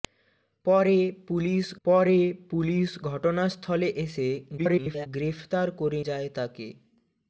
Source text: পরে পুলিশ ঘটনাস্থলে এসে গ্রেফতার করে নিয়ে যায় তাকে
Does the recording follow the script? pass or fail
fail